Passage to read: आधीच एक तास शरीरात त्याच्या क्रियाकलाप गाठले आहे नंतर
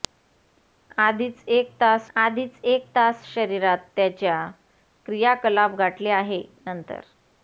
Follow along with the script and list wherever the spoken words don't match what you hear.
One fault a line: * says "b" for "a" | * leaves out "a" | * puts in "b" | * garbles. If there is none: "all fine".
* puts in "आधीच एक तास"